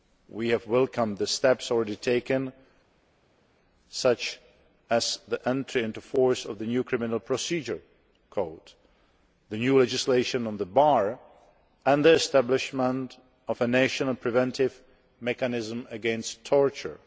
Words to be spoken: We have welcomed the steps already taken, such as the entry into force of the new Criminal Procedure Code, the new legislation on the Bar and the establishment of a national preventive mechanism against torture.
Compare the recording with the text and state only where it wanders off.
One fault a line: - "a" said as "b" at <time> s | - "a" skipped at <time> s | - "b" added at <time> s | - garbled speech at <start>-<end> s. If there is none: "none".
none